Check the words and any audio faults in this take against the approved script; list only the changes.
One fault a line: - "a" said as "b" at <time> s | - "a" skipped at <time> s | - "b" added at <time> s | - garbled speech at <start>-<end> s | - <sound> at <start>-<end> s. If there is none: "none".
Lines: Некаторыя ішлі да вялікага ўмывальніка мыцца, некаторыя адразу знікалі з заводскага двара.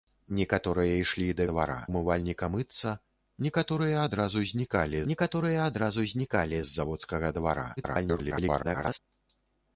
- "вялікага" said as "двара" at 1.5 s
- "некаторыя адразу знікалі" added at 5.1 s
- garbled speech at 7.8-9.0 s